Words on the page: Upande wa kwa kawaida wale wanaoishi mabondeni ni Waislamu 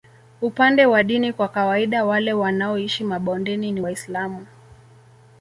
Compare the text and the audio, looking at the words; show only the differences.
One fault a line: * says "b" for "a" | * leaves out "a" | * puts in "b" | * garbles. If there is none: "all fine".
* puts in "dini"